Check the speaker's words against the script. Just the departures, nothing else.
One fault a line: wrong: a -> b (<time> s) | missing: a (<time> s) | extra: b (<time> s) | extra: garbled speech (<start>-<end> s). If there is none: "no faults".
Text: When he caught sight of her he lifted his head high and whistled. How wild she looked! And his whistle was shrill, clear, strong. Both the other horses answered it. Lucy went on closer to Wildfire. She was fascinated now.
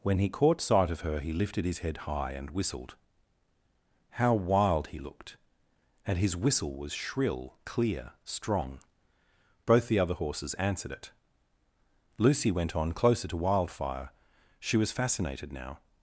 wrong: she -> he (4.9 s)